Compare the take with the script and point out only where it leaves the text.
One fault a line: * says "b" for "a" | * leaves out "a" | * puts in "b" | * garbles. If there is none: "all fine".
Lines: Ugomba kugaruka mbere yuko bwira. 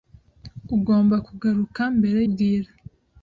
* leaves out "yuko"